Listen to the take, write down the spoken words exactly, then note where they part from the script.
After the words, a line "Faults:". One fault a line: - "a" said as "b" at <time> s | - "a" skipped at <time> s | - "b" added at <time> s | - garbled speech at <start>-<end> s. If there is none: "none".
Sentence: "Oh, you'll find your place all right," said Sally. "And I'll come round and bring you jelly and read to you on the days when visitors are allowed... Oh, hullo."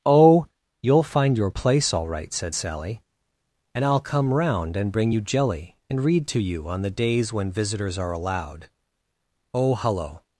"Oh, you'll find your place all right," said Sally. "And I'll come round and bring you jelly and read to you on the days when visitors are allowed... Oh, hullo."
Faults:
none